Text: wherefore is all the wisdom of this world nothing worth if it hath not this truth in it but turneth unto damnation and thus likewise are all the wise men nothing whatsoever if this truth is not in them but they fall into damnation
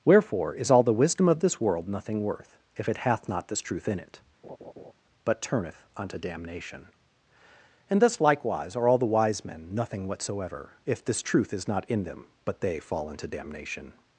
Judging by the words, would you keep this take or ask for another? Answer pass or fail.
pass